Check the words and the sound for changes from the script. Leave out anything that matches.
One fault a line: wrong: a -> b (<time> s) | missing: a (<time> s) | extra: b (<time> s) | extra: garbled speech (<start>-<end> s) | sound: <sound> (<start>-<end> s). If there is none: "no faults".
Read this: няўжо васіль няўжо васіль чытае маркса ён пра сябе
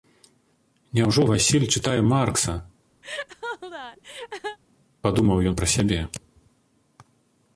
missing: няўжо васіль (1.6 s)
sound: laugh (3.0-4.6 s)
extra: падумаў (5.1 s)